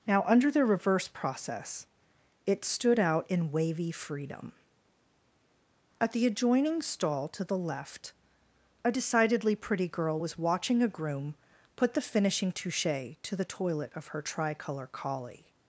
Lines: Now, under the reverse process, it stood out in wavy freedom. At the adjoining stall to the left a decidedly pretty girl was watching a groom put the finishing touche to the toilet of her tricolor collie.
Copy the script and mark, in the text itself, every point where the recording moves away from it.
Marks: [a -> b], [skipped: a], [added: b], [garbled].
Now, under the reverse process, it stood out in wavy freedom. At the adjoining stall to the left a decidedly pretty girl was watching a groom put the finishing touche to the toilet of her tricolor collie.